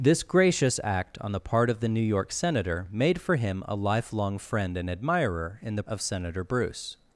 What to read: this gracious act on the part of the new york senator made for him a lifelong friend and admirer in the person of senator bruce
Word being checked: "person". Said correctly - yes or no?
no